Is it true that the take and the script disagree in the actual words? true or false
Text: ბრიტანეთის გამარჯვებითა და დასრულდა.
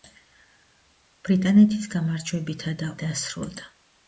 false